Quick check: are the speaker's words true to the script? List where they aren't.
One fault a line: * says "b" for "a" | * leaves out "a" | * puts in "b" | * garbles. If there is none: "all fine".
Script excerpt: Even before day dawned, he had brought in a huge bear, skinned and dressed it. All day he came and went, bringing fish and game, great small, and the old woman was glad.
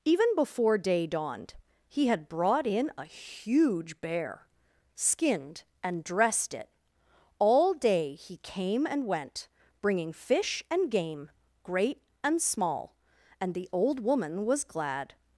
* puts in "and"